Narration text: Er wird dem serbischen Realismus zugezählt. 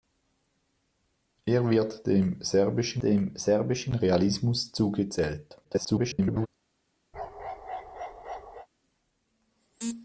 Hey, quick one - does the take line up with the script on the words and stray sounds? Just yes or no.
no